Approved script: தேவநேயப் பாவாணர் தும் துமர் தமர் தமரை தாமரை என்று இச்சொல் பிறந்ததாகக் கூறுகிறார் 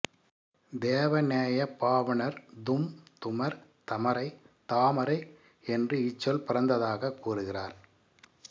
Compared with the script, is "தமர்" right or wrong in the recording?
wrong